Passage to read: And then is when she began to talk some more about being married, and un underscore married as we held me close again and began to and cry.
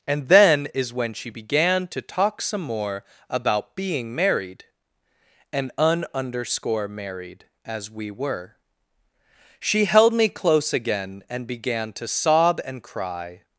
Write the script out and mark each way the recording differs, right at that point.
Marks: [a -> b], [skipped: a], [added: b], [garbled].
And then is when she began to talk some more about being married, and un underscore married as we [added: were She] held me close again and began to [added: sob] and cry.